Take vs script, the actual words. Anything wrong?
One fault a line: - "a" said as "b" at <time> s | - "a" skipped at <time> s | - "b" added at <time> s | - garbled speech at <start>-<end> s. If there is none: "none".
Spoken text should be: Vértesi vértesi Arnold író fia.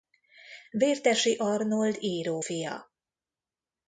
- "vértesi" skipped at 1.4 s